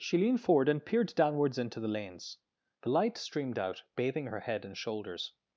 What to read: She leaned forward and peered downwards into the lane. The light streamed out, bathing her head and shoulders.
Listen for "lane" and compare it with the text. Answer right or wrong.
wrong